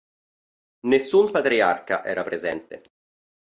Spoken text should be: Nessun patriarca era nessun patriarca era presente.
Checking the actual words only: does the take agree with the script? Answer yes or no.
no